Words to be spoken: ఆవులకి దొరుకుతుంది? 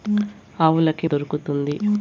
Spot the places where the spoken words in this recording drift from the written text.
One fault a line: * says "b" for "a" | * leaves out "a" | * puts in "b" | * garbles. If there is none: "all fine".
all fine